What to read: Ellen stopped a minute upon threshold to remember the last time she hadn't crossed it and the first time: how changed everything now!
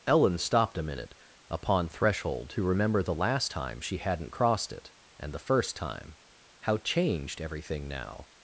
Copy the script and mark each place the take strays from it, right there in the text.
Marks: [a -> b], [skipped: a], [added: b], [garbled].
Ellen stopped a minute upon threshold to remember the last time she hadn't crossed it and the first time: how changed everything now!